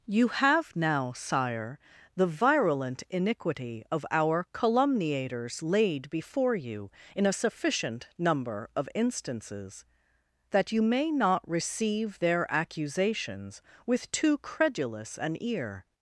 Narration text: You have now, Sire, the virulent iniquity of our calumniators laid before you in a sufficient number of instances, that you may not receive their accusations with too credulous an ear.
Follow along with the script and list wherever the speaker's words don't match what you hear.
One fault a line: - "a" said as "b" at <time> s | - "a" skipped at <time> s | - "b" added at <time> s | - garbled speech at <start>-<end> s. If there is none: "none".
none